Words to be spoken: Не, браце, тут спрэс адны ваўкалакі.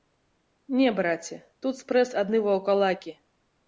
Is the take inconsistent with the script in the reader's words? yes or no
no